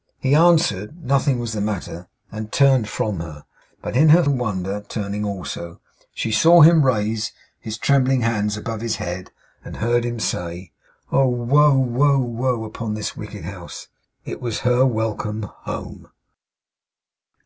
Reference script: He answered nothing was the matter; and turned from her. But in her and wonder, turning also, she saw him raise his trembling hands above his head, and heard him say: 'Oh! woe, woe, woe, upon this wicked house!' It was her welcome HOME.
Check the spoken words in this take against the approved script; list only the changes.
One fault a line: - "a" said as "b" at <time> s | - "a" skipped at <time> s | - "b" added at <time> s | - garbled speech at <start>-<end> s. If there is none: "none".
none